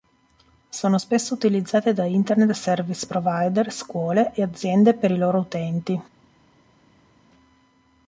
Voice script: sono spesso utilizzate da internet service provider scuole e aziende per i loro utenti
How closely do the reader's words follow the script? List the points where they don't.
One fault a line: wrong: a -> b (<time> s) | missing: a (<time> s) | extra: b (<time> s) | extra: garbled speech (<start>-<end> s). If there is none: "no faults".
no faults